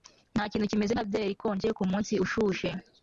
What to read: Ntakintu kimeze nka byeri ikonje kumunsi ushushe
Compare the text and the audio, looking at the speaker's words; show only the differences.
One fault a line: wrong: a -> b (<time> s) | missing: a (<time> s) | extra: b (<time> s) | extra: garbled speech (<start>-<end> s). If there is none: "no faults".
no faults